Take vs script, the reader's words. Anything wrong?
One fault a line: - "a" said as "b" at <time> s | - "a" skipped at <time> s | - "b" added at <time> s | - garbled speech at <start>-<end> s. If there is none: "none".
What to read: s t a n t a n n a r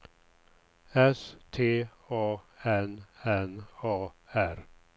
- "t a n" skipped at 3.0 s